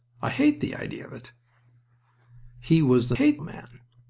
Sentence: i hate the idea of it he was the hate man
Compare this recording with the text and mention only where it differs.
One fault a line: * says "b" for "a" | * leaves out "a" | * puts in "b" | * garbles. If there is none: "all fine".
all fine